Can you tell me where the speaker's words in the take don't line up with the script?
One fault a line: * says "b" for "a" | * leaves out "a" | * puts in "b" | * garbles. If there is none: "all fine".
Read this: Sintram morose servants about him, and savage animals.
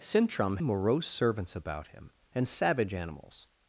all fine